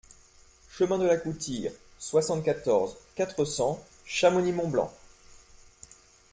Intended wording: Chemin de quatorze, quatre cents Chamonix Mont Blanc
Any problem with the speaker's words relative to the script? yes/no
yes